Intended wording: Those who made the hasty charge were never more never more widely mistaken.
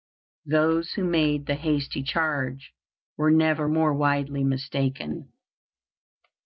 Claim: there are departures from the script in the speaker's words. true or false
true